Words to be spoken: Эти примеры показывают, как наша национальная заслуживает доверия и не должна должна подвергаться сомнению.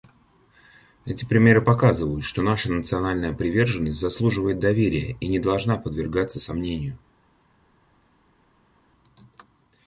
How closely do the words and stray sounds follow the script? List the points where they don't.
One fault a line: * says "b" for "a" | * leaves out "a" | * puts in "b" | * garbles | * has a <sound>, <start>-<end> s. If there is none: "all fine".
* says "что" for "как"
* puts in "приверженность"
* leaves out "должна"